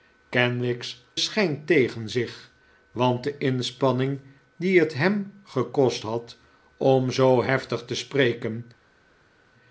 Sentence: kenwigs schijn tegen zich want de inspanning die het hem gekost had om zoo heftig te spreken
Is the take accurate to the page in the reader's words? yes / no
yes